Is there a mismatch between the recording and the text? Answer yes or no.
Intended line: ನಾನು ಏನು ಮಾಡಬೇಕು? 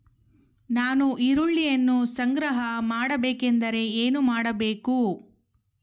yes